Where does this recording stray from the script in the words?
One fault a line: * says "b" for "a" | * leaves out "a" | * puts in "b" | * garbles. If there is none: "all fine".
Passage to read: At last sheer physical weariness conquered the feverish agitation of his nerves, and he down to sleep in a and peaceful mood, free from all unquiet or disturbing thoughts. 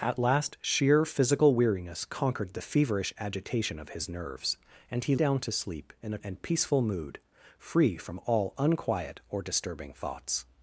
all fine